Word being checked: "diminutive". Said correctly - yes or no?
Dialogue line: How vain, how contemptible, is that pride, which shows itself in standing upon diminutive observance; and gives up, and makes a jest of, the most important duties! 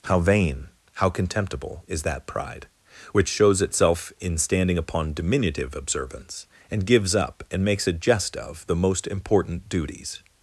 yes